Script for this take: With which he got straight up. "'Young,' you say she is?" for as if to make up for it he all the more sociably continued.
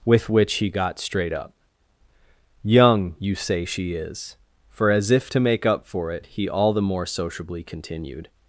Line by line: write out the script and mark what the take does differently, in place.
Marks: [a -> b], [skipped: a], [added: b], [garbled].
With which he got straight up. "'Young,' you say she is?" for as if to make up for it he all the more sociably continued.